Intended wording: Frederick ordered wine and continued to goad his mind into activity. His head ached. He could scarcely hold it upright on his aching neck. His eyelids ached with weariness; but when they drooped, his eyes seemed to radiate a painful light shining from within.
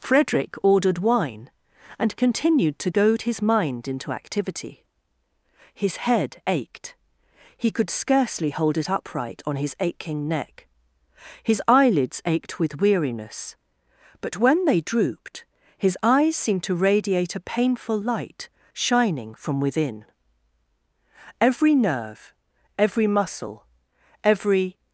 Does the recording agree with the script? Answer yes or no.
no